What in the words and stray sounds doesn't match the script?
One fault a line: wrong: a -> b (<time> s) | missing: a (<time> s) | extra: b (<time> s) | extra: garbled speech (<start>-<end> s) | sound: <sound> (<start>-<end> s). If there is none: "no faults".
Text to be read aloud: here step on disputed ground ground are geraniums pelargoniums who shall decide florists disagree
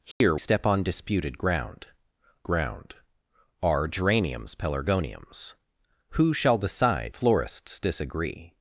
sound: dropout (0.1-0.2 s)